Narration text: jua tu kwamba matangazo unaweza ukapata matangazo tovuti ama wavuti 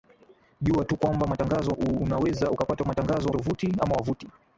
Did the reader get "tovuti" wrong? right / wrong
right